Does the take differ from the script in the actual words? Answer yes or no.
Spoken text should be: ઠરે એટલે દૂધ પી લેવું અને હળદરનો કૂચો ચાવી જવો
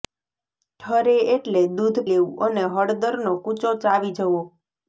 yes